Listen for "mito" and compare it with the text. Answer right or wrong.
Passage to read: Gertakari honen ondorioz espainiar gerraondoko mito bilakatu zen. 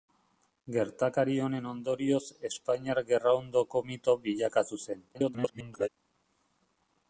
right